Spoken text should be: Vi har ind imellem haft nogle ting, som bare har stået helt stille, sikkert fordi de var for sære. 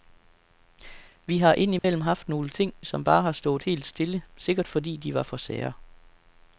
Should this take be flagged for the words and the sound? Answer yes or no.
yes